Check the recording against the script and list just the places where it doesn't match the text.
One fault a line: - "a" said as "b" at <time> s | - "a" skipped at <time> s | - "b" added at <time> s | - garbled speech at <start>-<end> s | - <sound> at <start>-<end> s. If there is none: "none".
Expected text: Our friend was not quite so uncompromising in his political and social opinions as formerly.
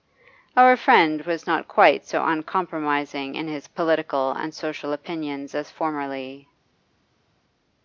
none